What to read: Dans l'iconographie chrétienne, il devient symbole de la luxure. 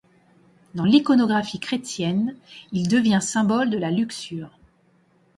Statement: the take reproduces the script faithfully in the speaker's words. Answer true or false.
true